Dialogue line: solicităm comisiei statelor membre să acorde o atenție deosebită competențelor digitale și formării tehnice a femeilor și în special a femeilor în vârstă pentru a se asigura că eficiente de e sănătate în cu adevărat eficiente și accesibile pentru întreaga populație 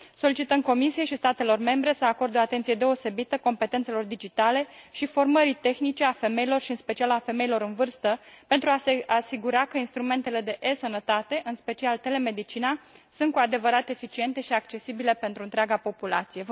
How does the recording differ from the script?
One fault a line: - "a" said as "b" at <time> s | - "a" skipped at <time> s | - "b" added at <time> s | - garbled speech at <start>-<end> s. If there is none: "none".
- "și" added at 1.0 s
- "eficiente" said as "instrumentele" at 9.8 s
- "special telemedicina sunt" added at 11.6 s